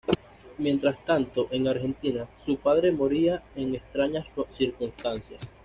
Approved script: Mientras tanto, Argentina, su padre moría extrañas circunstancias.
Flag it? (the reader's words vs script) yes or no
yes